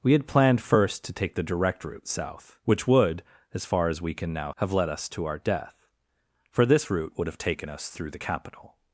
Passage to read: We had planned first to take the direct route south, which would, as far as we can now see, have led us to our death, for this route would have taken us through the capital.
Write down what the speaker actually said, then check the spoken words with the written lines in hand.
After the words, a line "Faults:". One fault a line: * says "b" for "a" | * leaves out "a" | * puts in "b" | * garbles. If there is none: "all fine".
We had planned first to take the direct route south, which would, as far as we can now have led us to our death, for this route would have taken us through the capital.
Faults:
* leaves out "see"